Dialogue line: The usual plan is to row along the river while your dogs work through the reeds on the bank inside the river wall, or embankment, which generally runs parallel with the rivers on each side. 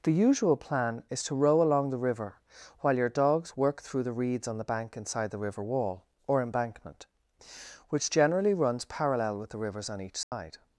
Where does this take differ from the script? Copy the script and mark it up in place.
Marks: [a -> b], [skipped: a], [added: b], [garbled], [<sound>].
The usual plan is to row along the river while your dogs work through the reeds on the bank inside the river wall, or embankment, which generally runs parallel with the rivers on each side. [dropout]